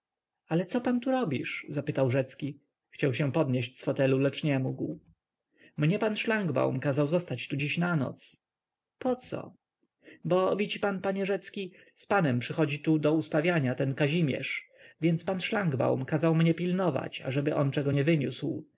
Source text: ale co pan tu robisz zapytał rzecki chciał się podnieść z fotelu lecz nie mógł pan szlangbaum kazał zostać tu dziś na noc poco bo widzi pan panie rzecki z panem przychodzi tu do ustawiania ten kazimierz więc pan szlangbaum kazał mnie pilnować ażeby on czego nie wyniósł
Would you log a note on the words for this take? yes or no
yes